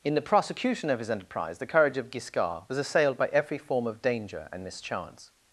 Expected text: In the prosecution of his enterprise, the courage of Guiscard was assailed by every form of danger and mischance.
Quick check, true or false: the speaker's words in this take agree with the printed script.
true